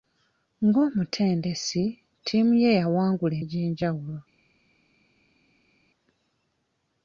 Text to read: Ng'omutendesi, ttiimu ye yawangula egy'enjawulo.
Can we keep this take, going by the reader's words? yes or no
yes